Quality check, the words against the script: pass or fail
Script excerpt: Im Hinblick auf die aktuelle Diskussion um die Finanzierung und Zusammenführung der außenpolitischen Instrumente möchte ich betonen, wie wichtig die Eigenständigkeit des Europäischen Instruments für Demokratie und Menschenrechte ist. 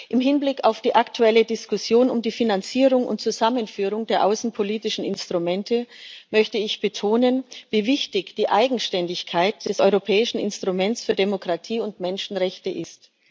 pass